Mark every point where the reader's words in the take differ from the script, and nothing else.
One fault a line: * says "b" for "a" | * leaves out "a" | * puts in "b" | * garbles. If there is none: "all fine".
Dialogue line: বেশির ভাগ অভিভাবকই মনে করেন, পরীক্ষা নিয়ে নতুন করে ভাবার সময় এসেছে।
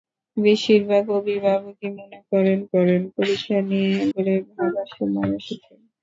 * puts in "করেন"
* leaves out "নতুন"